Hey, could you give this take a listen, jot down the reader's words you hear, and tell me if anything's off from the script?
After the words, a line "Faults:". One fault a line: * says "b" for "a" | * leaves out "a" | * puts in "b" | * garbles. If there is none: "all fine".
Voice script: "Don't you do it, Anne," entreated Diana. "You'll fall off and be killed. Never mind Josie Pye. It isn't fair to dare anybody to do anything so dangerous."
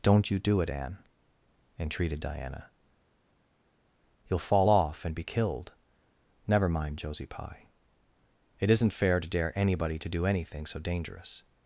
"Don't you do it, Anne," entreated Diana. "You'll fall off and be killed. Never mind Josie Pye. It isn't fair to dare anybody to do anything so dangerous."
Faults:
all fine